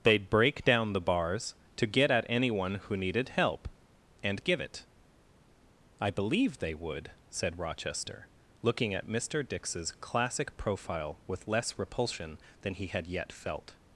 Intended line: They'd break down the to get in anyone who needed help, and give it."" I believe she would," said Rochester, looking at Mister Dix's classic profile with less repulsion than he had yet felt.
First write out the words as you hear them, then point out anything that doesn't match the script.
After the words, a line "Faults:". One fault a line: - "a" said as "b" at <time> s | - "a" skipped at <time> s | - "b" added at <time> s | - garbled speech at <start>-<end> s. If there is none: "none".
They'd break down the bars to get at anyone who needed help, and give it."" I believe they would," said Rochester, looking at Mister Dix's classic profile with less repulsion than he had yet felt.
Faults:
- "bars" added at 1.0 s
- "in" said as "at" at 2.1 s
- "she" said as "they" at 6.6 s